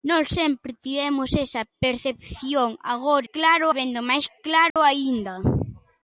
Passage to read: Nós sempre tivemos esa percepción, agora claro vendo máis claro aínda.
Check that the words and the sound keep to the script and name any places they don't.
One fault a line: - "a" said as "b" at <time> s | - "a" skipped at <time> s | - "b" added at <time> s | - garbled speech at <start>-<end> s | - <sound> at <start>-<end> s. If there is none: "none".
- dropout at 4.7-4.8 s